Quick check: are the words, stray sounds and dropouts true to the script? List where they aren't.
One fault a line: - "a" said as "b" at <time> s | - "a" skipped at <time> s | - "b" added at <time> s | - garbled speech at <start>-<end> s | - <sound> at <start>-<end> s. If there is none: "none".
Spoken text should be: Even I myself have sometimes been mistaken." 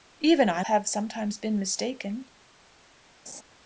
- "myself" skipped at 0.6 s
- laugh at 3.3-3.4 s